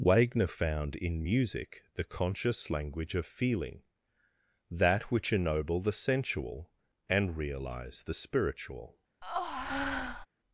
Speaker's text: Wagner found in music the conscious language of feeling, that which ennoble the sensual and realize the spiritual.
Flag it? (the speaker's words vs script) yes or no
no